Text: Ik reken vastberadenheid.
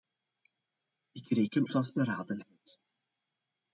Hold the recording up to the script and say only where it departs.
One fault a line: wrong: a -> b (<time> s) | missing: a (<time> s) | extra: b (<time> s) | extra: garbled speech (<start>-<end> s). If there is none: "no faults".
no faults